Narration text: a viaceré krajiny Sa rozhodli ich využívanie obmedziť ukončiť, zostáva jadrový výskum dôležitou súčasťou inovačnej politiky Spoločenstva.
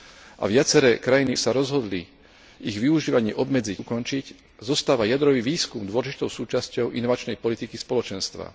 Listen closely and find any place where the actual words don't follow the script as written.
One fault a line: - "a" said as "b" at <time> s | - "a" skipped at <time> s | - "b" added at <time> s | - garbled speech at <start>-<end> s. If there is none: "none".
none